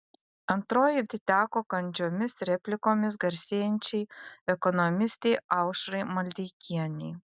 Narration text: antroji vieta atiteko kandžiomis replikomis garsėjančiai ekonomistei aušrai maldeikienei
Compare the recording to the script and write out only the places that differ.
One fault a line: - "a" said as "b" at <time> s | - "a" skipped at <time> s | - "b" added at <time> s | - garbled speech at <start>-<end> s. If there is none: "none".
- "vieta" skipped at 1.0 s